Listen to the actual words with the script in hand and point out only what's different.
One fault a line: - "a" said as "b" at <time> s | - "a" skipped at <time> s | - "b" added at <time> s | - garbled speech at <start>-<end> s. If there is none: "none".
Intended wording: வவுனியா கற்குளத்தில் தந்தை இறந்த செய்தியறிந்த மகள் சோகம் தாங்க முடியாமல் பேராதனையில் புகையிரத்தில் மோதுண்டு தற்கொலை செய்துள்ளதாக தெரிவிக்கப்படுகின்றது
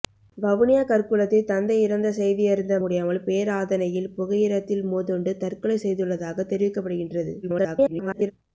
- "மகள் சோகம் தாங்க" skipped at 2.8 s
- garbled speech at 7.4-8.3 s